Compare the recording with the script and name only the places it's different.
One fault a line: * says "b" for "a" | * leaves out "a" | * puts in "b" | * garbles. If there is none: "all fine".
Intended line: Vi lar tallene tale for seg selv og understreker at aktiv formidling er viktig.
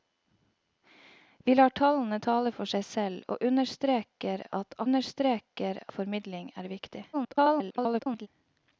* says "understreker" for "aktiv"
* garbles